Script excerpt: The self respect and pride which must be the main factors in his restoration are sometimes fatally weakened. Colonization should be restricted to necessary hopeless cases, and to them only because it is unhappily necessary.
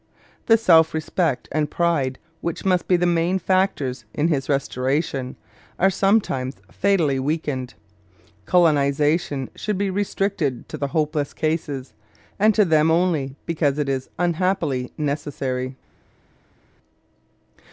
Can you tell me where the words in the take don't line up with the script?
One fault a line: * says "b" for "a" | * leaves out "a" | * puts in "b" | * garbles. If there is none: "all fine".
* says "the" for "necessary"